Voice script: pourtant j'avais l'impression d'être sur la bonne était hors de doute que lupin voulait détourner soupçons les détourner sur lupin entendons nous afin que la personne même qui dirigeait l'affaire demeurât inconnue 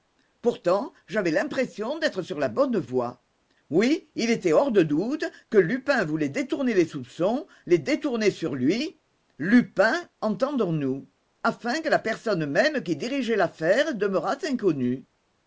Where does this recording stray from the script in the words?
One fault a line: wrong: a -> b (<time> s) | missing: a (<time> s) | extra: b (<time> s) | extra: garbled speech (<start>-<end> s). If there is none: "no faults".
extra: voie oui il (2.8 s)
extra: les (6.7 s)
extra: lui (8.6 s)